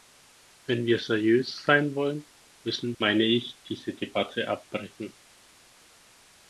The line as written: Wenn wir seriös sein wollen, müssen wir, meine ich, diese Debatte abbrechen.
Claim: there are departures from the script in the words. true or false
true